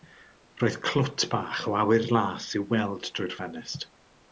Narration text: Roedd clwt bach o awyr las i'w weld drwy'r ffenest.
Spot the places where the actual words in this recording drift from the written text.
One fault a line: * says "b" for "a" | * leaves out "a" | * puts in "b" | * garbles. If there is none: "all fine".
all fine